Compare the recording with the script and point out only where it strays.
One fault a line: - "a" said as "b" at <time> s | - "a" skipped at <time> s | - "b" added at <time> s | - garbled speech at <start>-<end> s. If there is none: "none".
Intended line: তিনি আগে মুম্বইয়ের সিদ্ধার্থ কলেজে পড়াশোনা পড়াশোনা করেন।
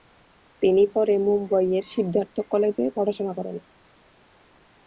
- "আগে" said as "পরে" at 0.9 s
- "পড়াশোনা" skipped at 3.3 s